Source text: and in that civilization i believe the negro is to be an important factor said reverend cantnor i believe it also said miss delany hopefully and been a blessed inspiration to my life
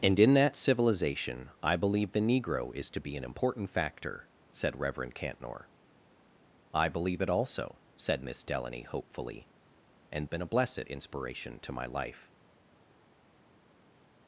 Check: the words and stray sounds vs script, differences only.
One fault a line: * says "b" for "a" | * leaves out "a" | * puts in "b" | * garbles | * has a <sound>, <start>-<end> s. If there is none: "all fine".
all fine